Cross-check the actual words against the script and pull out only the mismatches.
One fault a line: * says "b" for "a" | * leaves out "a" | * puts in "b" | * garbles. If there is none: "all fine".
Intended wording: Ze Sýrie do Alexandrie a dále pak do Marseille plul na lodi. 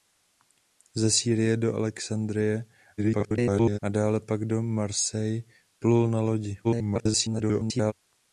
* garbles
* garbles